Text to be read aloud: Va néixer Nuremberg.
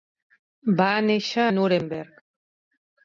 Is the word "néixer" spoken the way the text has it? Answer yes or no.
yes